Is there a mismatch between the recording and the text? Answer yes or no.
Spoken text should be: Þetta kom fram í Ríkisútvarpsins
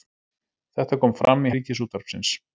no